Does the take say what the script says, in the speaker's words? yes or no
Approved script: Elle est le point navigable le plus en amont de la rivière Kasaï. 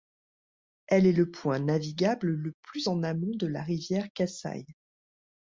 yes